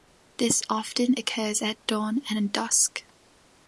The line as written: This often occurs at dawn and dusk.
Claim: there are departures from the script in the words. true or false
false